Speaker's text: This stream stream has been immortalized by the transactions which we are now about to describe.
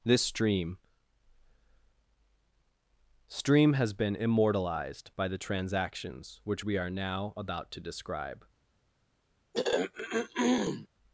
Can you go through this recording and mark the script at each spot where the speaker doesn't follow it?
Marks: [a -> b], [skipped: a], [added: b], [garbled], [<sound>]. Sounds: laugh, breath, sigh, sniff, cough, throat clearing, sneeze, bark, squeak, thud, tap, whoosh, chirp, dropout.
This stream stream has been immortalized by the transactions which we are now about to describe. [throat clearing]